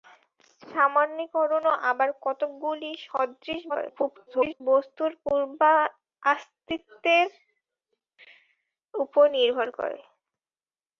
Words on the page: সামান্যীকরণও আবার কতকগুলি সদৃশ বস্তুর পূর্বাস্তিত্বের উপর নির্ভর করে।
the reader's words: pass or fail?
fail